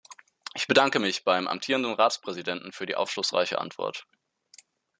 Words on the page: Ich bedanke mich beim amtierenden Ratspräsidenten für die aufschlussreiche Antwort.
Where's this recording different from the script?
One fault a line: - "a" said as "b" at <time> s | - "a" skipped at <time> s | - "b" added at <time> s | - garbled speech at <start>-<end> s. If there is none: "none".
none